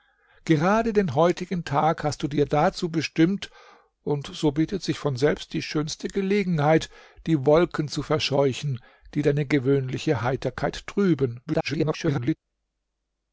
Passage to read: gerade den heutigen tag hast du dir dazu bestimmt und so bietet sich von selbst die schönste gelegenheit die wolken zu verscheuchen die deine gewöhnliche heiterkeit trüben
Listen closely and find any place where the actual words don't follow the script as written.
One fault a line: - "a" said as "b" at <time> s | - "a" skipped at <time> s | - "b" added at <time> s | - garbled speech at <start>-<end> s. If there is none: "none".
- garbled speech at 11.5-12.4 s